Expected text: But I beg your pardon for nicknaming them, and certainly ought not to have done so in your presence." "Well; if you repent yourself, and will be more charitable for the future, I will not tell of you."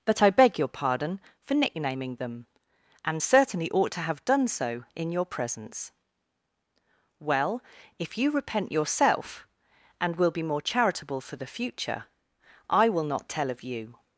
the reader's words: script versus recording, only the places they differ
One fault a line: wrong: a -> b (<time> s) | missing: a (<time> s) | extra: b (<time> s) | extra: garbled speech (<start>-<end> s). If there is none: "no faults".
missing: not (3.9 s)